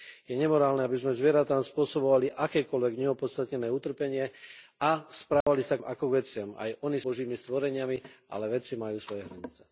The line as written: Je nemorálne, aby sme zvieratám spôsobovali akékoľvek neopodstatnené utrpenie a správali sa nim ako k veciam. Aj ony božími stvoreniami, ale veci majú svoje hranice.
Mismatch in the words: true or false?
false